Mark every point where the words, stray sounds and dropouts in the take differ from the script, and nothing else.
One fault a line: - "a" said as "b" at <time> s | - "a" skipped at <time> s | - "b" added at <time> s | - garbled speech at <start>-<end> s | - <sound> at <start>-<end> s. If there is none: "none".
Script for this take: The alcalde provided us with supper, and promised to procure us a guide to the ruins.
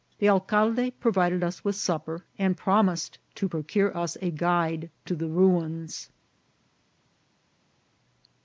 none